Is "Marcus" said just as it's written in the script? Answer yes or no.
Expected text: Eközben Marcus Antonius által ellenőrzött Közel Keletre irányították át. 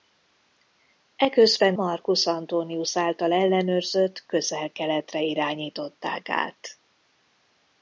yes